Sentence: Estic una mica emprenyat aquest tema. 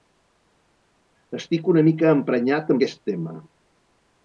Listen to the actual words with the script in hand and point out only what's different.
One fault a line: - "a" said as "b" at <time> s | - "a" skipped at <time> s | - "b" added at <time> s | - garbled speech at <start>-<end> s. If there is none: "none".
none